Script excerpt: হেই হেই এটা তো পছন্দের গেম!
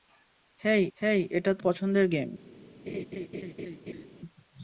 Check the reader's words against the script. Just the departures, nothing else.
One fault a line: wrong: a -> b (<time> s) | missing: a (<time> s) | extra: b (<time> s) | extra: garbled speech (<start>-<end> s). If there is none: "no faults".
no faults